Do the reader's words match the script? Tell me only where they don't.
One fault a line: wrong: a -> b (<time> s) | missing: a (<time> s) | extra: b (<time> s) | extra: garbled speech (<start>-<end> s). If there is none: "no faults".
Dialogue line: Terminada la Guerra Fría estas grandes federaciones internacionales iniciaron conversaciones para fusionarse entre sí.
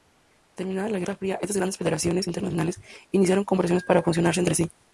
no faults